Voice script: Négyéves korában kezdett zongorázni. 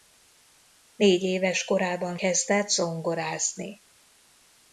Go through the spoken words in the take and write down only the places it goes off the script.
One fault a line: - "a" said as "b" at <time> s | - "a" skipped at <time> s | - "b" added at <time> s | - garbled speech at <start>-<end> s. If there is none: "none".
none